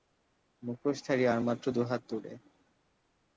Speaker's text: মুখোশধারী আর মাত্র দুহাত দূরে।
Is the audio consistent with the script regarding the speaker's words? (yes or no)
yes